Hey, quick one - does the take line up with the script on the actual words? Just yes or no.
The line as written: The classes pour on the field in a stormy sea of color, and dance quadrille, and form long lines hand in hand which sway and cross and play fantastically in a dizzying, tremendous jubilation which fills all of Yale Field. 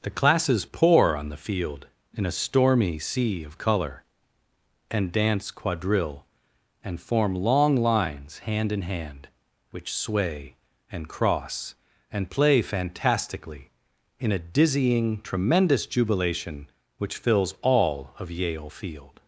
yes